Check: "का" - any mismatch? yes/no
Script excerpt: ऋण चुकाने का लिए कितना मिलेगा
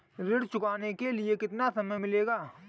yes